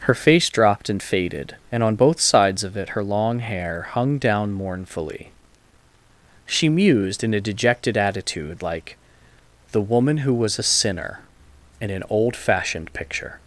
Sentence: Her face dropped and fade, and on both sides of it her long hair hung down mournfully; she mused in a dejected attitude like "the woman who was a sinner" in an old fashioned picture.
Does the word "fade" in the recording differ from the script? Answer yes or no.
yes